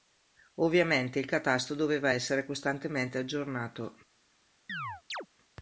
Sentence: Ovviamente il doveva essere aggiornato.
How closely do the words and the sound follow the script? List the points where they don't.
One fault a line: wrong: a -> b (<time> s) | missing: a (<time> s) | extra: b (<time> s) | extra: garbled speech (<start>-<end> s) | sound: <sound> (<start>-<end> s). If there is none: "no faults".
extra: catasto (1.3 s)
extra: costantemente (2.4 s)
sound: chirp (4.7-5.3 s)